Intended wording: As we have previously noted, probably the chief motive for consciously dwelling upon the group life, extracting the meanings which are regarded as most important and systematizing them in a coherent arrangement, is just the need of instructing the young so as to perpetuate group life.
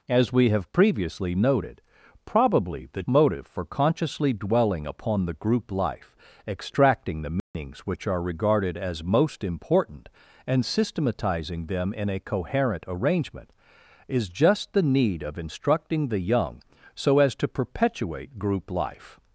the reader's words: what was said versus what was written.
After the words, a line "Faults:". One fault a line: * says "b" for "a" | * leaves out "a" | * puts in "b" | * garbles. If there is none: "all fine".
As we have previously noted, probably the motive for consciously dwelling upon the group life, extracting the meanings which are regarded as most important and systematizing them in a coherent arrangement, is just the need of instructing the young so as to perpetuate group life.
Faults:
* leaves out "chief"